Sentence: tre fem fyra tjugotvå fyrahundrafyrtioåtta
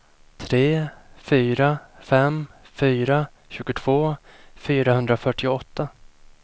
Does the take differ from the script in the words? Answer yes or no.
yes